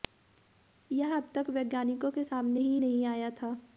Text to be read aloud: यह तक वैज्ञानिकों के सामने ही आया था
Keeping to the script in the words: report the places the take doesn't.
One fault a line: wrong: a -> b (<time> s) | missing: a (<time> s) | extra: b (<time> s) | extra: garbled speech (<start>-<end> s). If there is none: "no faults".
extra: अब (1.1 s)
extra: नहीं (2.8 s)